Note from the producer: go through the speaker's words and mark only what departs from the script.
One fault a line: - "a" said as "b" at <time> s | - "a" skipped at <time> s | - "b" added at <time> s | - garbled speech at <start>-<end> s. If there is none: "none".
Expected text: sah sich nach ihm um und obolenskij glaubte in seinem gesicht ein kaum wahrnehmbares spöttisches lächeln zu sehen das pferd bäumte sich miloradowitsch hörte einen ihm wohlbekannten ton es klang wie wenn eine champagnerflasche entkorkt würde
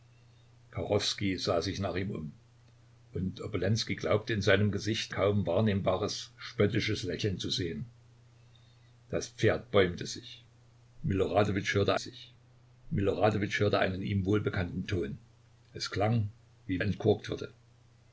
- "ein" skipped at 5.1 s
- "sich miloradowitsch hörte" added at 12.0 s
- "wenn eine champagnerflasche" skipped at 16.8 s